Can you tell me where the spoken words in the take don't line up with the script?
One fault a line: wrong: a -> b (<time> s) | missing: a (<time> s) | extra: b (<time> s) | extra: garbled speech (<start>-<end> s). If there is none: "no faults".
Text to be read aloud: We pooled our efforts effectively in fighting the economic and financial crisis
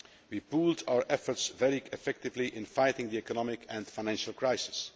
extra: very (1.5 s)